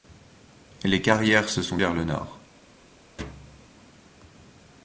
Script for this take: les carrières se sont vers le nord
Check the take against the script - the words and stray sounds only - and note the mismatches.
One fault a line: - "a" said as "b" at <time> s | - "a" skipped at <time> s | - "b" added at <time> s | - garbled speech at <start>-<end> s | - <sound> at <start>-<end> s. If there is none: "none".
- thud at 3.2-3.7 s